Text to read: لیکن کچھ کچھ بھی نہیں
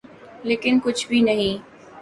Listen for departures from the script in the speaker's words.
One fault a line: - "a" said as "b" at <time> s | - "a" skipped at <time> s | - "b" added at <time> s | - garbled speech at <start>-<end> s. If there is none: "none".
- "کچھ" skipped at 1.1 s